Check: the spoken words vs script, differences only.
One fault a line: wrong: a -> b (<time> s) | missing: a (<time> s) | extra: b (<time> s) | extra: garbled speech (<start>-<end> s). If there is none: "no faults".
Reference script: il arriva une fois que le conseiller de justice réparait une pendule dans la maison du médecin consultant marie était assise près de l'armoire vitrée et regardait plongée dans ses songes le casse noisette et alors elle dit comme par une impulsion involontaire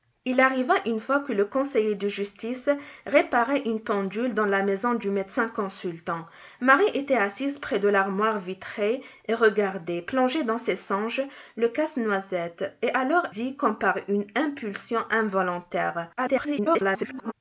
missing: elle (13.3 s)
extra: garbled speech (16.2-17.3 s)